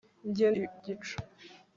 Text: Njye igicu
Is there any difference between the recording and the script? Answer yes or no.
no